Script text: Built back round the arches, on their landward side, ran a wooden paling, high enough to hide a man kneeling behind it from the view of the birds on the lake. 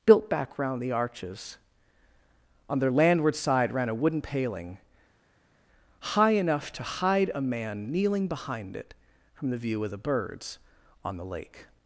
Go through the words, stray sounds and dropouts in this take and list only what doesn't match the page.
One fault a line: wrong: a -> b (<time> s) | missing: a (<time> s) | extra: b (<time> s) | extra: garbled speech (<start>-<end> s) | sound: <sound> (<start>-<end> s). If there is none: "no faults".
no faults